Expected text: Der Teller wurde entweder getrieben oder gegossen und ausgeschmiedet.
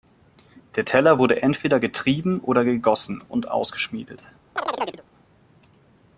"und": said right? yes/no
yes